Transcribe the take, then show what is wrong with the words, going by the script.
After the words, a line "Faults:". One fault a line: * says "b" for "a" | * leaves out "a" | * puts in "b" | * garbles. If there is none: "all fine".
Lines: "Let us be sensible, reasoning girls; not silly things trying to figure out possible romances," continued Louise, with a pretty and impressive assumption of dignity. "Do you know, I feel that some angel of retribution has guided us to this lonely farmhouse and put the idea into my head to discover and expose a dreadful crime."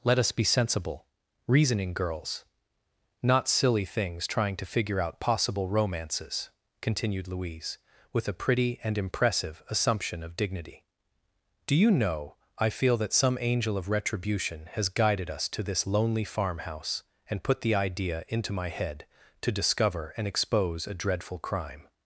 "Let us be sensible, reasoning girls; not silly things trying to figure out possible romances," continued Louise, with a pretty and impressive assumption of dignity. "Do you know, I feel that some angel of retribution has guided us to this lonely farmhouse and put the idea into my head to discover and expose a dreadful crime."
Faults:
all fine